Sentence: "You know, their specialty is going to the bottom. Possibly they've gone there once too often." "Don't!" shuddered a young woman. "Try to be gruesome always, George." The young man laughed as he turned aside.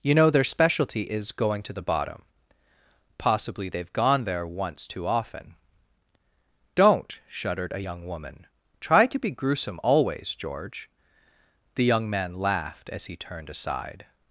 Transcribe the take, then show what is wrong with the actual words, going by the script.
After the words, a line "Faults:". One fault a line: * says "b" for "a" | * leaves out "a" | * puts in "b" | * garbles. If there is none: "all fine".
"You know, their specialty is going to the bottom. Possibly they've gone there once too often." "Don't!" shuddered a young woman. "Try to be gruesome always, George." The young man laughed as he turned aside.
Faults:
all fine